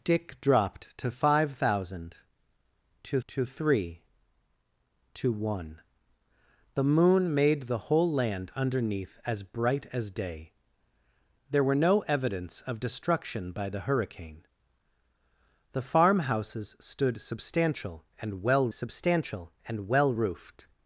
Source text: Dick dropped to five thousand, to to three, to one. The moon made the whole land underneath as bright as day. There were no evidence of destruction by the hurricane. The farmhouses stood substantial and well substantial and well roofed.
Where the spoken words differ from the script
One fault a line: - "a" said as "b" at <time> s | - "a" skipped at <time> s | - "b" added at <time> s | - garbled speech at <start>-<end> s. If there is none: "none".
none